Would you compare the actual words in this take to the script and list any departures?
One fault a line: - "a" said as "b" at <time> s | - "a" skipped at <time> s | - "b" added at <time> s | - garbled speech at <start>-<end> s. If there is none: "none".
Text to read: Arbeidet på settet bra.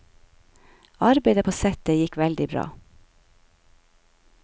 - "gikk veldig" added at 2.0 s